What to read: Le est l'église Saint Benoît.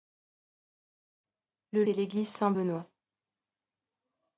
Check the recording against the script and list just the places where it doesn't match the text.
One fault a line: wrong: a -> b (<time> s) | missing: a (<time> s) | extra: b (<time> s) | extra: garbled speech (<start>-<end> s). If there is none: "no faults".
no faults